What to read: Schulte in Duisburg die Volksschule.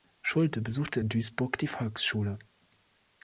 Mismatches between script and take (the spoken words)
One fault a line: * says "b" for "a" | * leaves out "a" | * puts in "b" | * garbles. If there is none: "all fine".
* puts in "besuchte"